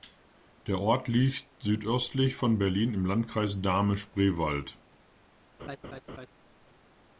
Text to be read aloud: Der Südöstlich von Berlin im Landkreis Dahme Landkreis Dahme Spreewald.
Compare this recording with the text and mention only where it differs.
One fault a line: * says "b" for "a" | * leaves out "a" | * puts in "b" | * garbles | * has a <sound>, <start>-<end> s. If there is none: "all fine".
* puts in "Ort liegt"
* leaves out "Landkreis Dahme"
* has a laugh, 5.6-6.3 s